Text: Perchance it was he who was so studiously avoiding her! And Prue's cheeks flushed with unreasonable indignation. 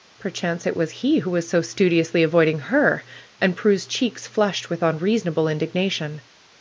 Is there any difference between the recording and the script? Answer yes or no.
no